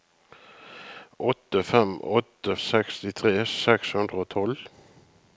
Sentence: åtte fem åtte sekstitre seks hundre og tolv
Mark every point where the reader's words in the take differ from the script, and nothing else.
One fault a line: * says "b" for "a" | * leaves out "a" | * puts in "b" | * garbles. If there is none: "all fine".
all fine